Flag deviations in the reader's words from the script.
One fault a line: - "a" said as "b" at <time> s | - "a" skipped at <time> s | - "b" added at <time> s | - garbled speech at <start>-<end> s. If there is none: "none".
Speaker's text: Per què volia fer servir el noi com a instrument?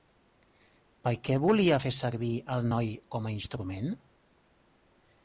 none